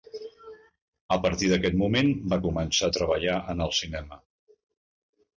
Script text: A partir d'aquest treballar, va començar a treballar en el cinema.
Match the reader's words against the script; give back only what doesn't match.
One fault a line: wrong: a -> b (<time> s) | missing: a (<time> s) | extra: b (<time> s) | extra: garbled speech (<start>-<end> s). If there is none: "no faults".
wrong: treballar -> moment (1.8 s)